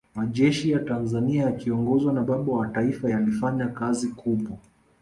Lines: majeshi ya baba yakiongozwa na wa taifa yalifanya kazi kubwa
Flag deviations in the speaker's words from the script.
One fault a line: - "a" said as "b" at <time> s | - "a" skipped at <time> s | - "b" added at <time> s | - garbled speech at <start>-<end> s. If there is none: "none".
- "baba" said as "tanzania" at 0.8 s
- "baba" added at 2.2 s